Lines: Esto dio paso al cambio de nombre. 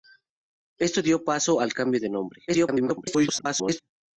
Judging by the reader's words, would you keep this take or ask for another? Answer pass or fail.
fail